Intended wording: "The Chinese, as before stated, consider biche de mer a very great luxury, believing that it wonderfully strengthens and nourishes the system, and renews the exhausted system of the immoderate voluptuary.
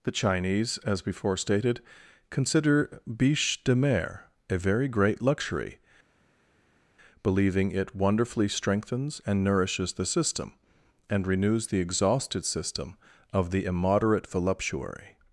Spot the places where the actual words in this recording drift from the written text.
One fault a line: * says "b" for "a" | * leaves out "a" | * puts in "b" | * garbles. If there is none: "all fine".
* leaves out "that"